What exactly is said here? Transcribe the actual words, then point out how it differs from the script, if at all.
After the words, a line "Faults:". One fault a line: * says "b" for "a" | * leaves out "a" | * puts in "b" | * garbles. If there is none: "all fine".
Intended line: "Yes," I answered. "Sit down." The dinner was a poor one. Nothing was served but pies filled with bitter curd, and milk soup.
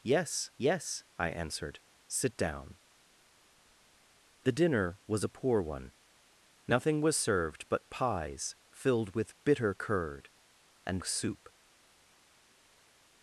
"Yes yes," I answered. "Sit down." The dinner was a poor one. Nothing was served but pies filled with bitter curd, and soup.
Faults:
* puts in "yes"
* leaves out "milk"